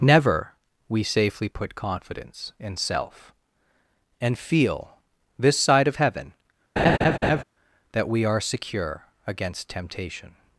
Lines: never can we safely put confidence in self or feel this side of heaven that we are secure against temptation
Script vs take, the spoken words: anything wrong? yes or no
yes